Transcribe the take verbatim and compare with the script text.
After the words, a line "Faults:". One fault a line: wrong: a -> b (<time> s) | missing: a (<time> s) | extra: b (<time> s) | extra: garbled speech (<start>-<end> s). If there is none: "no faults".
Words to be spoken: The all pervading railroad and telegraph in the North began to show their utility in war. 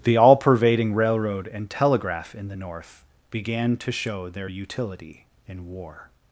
The all pervading railroad and telegraph in the North began to show their utility in war.
Faults:
no faults